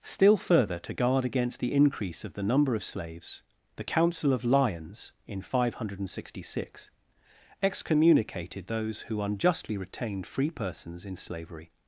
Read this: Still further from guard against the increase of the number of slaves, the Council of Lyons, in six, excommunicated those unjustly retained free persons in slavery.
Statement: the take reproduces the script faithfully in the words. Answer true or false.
false